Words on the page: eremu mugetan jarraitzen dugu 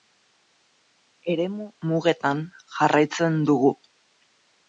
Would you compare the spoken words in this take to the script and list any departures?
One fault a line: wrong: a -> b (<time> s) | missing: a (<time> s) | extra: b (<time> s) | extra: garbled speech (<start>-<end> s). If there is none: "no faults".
no faults